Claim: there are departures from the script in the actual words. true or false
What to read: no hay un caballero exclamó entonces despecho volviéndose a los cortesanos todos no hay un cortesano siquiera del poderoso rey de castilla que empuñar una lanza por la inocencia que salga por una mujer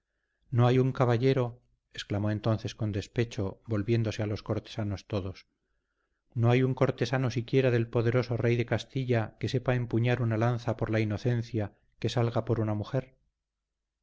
true